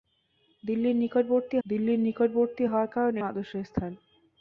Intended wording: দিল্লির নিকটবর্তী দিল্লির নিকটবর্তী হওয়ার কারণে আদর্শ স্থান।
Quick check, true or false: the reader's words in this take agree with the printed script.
true